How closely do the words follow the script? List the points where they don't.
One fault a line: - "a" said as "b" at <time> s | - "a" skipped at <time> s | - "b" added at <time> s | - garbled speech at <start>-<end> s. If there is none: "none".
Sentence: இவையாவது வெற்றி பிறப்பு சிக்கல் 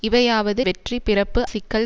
none